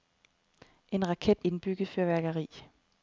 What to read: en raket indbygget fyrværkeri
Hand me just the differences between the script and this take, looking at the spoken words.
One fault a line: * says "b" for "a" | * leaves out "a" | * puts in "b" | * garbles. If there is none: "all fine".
all fine